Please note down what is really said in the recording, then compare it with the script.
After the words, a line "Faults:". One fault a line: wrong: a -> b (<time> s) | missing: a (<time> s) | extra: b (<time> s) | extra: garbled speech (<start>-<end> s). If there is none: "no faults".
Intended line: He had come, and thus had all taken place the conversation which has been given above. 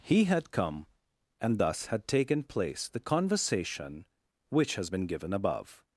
He had come, and thus had taken place the conversation which has been given above.
Faults:
missing: all (2.1 s)